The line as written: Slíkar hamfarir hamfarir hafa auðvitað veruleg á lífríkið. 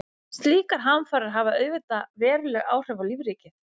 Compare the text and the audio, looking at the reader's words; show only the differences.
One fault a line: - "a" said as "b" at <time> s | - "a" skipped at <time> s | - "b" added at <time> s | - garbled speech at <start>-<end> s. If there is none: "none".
- "hamfarir" skipped at 1.3 s
- "áhrif" added at 2.8 s